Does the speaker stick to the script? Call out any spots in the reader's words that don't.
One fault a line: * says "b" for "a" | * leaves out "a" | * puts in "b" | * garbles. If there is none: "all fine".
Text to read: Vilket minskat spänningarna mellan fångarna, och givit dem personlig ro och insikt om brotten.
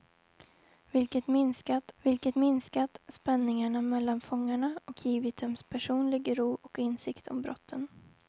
* puts in "vilket minskat"